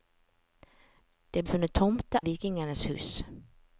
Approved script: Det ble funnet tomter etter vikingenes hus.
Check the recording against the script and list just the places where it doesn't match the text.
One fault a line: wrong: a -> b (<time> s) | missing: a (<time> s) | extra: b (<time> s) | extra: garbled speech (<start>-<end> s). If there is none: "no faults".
missing: ble (1.4 s)
missing: etter (2.2 s)